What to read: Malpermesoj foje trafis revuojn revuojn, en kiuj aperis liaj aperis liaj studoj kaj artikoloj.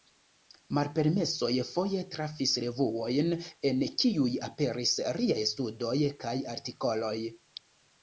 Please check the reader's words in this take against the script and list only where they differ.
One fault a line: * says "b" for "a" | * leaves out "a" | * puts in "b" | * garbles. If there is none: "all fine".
* leaves out "revuojn"
* leaves out "aperis liaj"